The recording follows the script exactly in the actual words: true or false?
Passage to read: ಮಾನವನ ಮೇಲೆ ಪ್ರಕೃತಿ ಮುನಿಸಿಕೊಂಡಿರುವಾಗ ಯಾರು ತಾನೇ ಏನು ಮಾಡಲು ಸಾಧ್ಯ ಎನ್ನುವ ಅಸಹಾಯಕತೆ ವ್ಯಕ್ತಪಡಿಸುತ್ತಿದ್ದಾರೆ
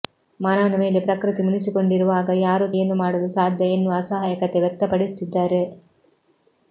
false